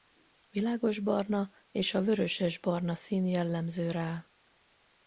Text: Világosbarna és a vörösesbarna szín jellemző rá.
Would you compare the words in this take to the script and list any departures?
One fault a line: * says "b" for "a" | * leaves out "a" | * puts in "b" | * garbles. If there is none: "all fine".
all fine